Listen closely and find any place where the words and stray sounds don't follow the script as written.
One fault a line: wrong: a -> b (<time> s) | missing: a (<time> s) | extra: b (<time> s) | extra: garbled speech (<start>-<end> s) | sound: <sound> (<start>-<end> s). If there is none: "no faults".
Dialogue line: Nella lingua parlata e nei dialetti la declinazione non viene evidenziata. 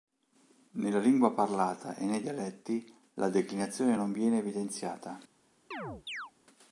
sound: chirp (5.7-6.3 s)